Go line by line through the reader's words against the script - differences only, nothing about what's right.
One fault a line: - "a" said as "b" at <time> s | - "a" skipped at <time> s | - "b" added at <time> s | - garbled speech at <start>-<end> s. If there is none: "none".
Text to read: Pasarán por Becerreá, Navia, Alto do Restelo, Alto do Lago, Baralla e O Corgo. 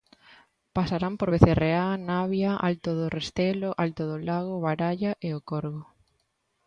none